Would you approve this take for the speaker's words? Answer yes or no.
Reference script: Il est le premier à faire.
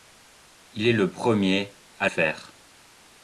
yes